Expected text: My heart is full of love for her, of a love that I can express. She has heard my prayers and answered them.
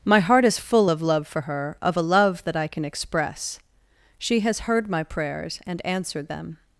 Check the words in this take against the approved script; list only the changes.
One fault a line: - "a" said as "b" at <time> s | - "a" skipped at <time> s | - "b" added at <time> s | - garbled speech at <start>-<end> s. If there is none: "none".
none